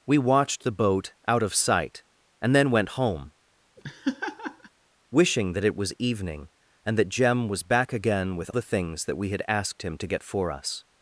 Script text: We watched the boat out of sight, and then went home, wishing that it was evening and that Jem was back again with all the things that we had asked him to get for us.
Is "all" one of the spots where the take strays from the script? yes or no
yes